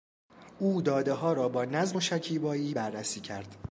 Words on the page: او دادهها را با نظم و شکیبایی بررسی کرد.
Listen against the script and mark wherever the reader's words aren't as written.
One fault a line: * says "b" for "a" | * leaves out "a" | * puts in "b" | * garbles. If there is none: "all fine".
all fine